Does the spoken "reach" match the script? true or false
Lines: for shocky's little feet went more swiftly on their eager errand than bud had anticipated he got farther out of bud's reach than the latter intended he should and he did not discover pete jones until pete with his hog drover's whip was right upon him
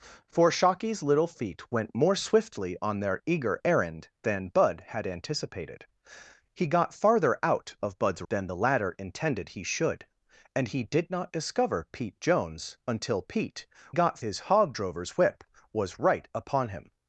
false